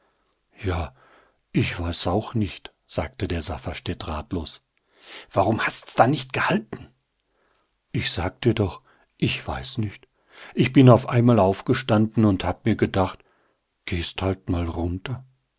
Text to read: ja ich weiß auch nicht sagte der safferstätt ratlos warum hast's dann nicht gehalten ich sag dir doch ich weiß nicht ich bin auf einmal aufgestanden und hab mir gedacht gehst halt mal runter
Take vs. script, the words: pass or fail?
pass